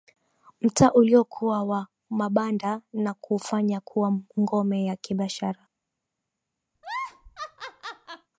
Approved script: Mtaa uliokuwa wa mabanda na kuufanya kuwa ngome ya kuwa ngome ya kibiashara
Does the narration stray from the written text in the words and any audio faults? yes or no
yes